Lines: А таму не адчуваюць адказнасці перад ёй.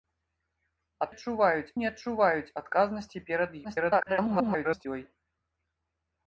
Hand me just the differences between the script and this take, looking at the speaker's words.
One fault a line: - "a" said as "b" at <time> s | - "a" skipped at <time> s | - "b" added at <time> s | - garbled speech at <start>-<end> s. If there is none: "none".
- "таму" said as "адчуваюць" at 1.1 s
- garbled speech at 3.6-4.9 s